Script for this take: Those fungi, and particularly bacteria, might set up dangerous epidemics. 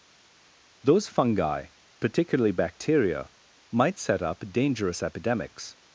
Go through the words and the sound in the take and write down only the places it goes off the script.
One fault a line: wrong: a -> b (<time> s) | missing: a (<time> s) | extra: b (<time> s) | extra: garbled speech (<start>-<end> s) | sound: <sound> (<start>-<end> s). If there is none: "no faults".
missing: and (1.7 s)